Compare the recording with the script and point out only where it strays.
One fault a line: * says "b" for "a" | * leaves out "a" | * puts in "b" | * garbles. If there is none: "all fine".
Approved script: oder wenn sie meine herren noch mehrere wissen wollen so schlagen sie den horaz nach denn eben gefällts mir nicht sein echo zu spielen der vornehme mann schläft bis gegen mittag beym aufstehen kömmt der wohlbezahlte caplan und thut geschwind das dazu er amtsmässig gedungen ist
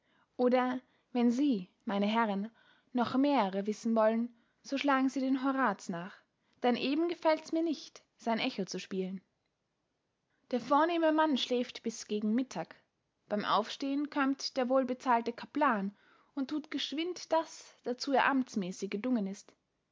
all fine